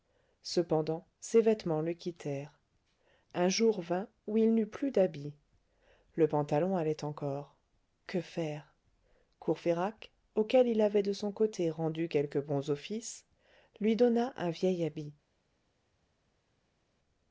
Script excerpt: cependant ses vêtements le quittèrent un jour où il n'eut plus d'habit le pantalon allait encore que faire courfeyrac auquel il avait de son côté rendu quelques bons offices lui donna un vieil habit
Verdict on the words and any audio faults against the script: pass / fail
fail